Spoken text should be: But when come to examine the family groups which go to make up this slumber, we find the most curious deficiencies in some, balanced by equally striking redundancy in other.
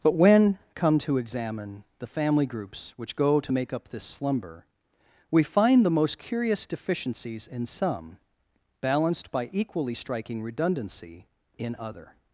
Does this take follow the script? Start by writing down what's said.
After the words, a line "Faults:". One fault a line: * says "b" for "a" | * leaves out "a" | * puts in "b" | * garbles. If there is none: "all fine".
But when come to examine the family groups which go to make up this slumber, we find the most curious deficiencies in some, balanced by equally striking redundancy in other.
Faults:
all fine